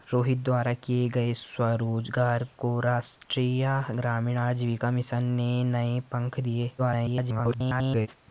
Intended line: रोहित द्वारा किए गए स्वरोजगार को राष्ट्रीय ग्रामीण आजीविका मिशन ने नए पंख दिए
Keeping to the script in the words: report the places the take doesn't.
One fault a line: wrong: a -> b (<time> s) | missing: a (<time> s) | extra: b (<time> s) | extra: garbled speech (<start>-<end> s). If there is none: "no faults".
extra: garbled speech (6.8-8.1 s)